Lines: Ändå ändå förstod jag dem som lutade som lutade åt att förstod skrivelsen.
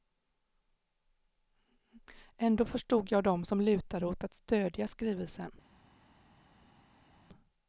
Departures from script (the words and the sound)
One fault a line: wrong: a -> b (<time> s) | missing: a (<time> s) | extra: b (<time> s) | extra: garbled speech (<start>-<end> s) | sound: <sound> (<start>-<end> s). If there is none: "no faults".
missing: ändå (2.6 s)
missing: som lutade (4.1 s)
wrong: förstod -> stödja (4.3 s)